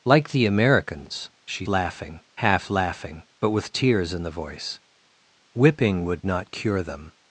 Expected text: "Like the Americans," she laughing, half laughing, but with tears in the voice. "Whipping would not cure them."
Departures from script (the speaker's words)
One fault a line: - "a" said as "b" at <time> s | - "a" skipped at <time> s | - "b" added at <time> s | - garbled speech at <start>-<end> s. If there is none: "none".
none